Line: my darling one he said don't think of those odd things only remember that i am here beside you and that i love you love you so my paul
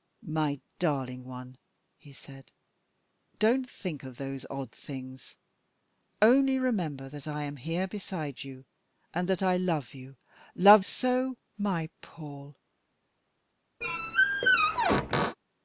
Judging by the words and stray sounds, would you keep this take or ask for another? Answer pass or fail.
fail